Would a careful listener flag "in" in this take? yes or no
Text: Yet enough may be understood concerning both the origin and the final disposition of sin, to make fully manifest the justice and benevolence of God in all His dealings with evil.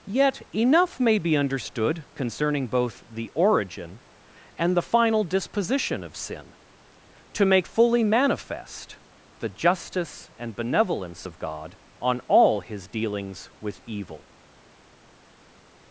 yes